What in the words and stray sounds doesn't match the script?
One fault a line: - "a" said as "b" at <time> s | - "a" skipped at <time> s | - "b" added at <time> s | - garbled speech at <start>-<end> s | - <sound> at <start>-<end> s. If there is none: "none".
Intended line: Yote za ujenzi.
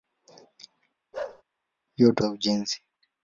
- bark at 1.1-1.4 s